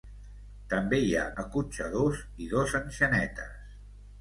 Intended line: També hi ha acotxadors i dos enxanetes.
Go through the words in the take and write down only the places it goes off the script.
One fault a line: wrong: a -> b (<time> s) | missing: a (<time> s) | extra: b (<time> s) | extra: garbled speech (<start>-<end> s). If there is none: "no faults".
no faults